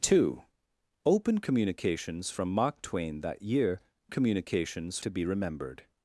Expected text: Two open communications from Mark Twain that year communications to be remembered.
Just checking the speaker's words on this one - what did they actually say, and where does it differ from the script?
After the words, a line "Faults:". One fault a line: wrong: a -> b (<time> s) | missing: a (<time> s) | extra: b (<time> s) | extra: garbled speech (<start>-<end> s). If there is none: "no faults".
Two open communications from Mark Twain that year communications to be remembered.
Faults:
no faults